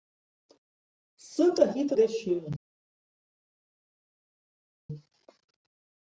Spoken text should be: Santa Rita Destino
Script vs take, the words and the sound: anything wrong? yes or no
no